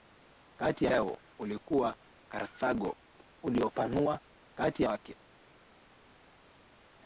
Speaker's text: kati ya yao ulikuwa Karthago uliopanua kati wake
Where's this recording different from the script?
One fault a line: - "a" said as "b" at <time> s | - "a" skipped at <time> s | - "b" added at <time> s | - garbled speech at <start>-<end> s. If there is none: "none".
none